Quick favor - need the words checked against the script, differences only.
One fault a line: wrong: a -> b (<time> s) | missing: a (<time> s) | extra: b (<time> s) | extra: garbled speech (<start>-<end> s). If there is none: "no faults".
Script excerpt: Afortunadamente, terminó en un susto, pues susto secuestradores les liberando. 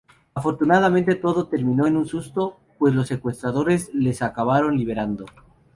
extra: todo (1.1 s)
wrong: susto -> los (2.9 s)
extra: acabaron (4.2 s)